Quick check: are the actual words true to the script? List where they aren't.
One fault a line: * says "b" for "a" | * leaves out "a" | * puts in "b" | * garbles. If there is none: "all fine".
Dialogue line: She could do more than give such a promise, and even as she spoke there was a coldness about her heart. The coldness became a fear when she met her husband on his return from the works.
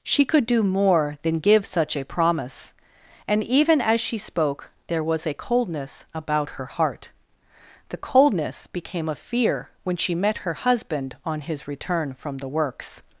all fine